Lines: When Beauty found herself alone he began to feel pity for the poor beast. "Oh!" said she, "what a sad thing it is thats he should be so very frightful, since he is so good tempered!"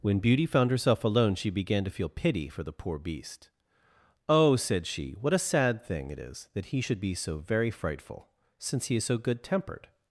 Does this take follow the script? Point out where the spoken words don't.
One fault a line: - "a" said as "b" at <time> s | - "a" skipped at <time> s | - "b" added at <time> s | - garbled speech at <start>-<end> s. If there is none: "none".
- "he" said as "she" at 1.4 s
- "thats" said as "that" at 6.5 s